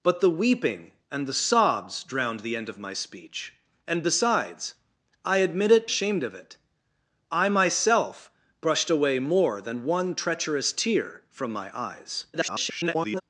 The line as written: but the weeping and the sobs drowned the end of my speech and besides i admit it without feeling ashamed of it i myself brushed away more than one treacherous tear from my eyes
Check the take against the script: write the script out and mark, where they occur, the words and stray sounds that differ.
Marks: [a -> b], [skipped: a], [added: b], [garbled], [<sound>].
but the weeping and the sobs drowned the end of my speech and besides i admit it [skipped: without feeling] ashamed of it i myself brushed away more than one treacherous tear from my eyes [garbled]